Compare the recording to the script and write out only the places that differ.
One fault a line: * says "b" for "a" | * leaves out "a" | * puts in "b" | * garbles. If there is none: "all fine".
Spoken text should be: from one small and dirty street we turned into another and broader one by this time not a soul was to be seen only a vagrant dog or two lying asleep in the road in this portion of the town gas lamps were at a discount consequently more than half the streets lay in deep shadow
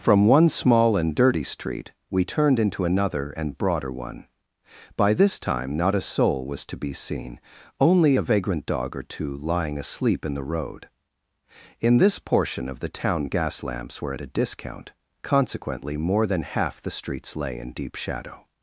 all fine